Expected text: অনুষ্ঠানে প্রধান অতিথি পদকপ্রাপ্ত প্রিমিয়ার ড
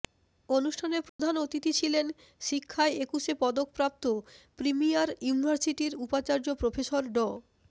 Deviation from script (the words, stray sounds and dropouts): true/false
true